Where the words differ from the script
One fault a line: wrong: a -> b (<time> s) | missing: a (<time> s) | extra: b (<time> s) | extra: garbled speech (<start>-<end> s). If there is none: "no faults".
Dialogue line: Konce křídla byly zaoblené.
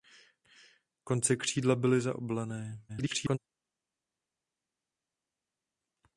extra: garbled speech (2.9-3.4 s)